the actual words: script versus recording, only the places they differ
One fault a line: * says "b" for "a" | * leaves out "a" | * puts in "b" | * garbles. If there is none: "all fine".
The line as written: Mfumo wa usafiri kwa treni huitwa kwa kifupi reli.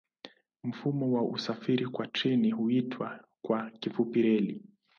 all fine